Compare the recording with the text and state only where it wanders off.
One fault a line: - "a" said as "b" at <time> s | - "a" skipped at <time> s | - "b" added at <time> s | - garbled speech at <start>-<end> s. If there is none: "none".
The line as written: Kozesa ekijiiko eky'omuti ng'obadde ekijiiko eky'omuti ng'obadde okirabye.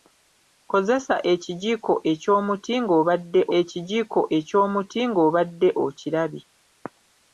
none